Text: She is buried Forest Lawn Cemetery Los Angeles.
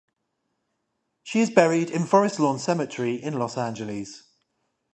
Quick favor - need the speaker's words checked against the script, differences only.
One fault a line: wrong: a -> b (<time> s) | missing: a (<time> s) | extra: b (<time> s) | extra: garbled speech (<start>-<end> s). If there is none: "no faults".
extra: in (1.9 s)
extra: in (3.1 s)